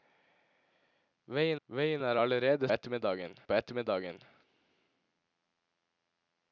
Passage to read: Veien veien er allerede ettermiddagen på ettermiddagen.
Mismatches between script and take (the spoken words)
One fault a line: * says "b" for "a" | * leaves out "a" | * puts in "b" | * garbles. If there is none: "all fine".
all fine